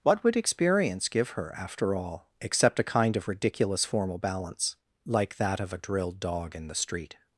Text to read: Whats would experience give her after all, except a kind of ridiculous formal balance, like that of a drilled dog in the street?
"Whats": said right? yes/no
no